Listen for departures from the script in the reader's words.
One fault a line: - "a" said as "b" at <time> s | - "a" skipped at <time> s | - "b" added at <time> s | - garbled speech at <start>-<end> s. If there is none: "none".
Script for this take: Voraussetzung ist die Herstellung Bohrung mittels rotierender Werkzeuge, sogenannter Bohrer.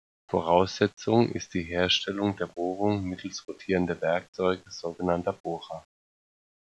- "der" added at 2.4 s